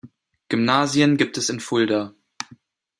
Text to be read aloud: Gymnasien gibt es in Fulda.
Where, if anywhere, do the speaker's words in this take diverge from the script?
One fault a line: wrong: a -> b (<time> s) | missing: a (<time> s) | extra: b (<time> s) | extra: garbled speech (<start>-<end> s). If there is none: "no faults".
no faults